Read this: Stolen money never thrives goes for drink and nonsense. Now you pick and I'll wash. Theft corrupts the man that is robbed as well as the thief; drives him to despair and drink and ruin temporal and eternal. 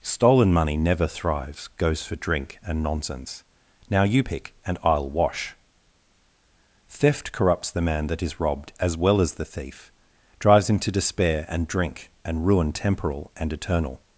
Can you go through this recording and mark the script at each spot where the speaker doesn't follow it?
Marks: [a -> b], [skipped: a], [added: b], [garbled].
Stolen money never thrives goes for drink and nonsense. Now you pick and I'll wash. Theft corrupts the man that is robbed as well as the thief; drives him to despair and drink and ruin temporal and eternal.